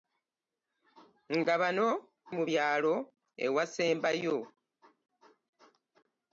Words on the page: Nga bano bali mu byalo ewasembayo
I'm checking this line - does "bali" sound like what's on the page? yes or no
no